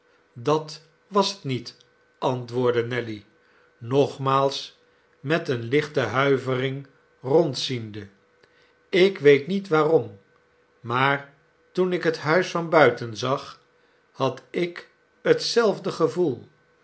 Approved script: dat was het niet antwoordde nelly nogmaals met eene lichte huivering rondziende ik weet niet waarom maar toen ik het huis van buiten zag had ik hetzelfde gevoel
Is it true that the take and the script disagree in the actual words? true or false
false